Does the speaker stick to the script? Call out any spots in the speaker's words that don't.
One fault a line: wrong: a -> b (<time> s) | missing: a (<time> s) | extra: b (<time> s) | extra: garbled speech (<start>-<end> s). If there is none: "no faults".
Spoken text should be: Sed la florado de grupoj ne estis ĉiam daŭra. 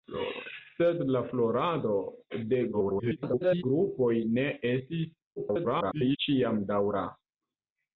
extra: garbled speech (2.7-3.6 s)
extra: garbled speech (5.4-6.2 s)